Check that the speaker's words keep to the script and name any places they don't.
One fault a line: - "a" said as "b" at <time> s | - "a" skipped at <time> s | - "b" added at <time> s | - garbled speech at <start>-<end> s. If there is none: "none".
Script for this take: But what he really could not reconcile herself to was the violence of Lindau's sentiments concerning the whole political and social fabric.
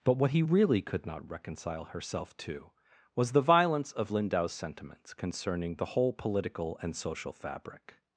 none